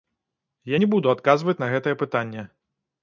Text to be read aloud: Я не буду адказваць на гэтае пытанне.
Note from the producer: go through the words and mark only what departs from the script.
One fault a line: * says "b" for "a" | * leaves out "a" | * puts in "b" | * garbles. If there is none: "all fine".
all fine